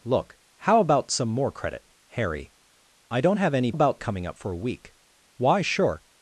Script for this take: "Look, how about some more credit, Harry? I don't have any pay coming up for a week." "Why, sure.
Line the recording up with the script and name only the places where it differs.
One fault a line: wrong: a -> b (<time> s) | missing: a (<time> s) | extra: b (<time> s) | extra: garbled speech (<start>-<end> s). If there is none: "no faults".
wrong: pay -> about (3.7 s)